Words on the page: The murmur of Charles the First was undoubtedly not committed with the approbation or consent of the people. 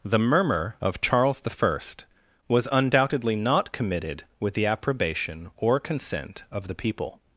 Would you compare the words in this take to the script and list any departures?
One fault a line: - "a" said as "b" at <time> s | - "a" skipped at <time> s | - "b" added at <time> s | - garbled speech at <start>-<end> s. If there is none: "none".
none